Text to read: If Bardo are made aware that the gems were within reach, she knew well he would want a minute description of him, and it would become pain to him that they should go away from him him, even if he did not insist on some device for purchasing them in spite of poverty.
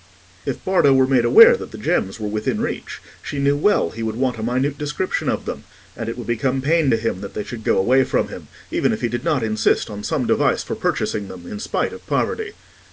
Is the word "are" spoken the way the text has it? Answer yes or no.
no